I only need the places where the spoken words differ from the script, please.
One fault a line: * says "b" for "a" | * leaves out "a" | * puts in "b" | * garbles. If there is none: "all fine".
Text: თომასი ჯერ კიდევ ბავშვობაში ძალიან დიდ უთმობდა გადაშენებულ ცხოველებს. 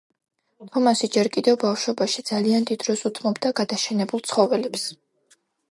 * puts in "დროს"